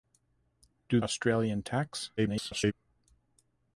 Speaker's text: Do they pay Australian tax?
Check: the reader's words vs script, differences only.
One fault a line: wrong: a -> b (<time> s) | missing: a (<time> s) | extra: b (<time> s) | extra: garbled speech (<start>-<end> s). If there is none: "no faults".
missing: they pay (1.0 s)
extra: garbled speech (2.2-2.7 s)